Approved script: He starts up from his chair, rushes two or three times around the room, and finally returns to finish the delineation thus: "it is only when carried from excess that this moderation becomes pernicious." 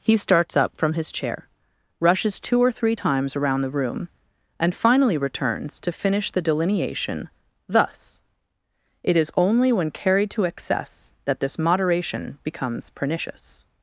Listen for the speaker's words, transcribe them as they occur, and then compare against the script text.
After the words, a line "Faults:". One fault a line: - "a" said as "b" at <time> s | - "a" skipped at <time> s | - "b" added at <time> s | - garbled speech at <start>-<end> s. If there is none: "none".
He starts up from his chair, rushes two or three times around the room, and finally returns to finish the delineation thus: "it is only when carried to excess that this moderation becomes pernicious."
Faults:
- "from" said as "to" at 10.3 s